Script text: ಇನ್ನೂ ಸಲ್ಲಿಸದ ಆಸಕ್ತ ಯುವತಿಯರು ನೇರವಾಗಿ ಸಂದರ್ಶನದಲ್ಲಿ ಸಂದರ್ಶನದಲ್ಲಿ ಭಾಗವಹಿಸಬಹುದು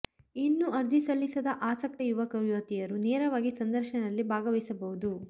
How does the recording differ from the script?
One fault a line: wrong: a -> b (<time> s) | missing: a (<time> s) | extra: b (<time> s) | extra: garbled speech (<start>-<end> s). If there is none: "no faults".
extra: ಅರ್ಜಿ (0.7 s)
extra: ಯುವಕ (2.0 s)
missing: ಸಂದರ್ಶನದಲ್ಲಿ (4.2 s)